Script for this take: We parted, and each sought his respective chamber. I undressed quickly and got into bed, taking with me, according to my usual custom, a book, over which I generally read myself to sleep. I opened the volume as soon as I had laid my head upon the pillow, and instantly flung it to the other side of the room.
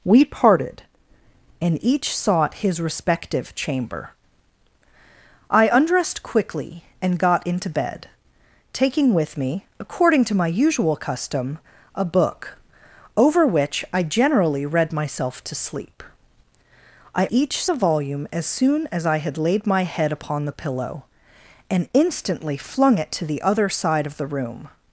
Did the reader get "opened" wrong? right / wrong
wrong